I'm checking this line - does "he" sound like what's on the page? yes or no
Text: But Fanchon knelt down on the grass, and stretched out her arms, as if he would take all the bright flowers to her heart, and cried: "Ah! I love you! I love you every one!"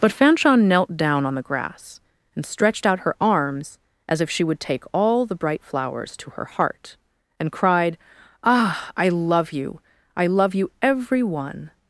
no